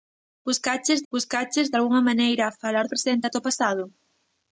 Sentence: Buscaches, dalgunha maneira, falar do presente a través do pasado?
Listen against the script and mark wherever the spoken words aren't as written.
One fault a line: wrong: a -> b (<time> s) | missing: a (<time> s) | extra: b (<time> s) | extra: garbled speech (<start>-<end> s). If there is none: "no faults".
extra: buscaches (1.1 s)
missing: do (2.9 s)
missing: través (3.3 s)